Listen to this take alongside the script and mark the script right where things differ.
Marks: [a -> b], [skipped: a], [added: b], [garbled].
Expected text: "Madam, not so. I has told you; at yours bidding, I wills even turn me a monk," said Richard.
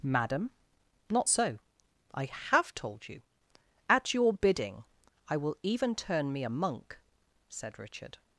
"Madam, not so. I [has -> have] told you; at [yours -> your] bidding, I [wills -> will] even turn me a monk," said Richard.